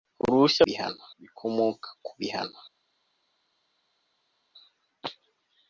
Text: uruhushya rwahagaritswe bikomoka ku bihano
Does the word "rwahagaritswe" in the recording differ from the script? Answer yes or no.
yes